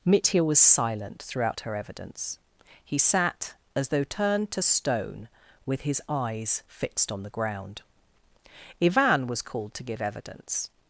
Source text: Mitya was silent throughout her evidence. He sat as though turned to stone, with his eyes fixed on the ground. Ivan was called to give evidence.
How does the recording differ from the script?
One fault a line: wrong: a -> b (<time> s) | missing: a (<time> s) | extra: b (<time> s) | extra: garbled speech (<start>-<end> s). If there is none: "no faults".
no faults